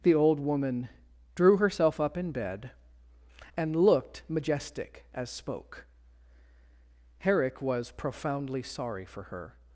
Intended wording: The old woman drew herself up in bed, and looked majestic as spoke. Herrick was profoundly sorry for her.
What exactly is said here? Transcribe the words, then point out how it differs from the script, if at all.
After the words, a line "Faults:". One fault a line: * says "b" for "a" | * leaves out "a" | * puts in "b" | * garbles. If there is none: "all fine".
The old woman drew herself up in bed, and looked majestic as spoke. Herrick was profoundly sorry for her.
Faults:
all fine